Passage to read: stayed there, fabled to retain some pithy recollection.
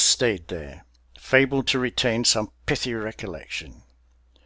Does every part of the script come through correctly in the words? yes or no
yes